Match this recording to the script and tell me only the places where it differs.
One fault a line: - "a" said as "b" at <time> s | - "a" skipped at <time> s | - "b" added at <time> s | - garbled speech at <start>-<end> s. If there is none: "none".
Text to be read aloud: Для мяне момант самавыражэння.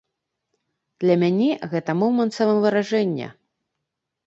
- "гэта" added at 1.7 s